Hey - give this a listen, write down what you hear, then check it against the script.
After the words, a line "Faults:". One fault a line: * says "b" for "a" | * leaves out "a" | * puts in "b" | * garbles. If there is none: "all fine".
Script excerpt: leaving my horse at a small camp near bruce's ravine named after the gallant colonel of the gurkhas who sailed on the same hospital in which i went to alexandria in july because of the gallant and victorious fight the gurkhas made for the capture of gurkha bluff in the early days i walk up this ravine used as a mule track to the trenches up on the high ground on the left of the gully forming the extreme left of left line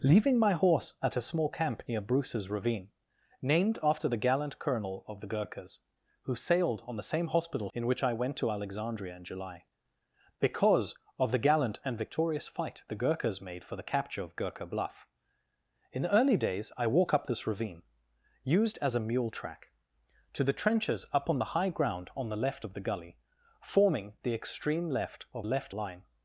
leaving my horse at a small camp near bruce's ravine named after the gallant colonel of the gurkhas who sailed on the same hospital in which i went to alexandria in july because of the gallant and victorious fight the gurkhas made for the capture of gurkha bluff in the early days i walk up this ravine used as a mule track to the trenches up on the high ground on the left of the gully forming the extreme left of left line
Faults:
all fine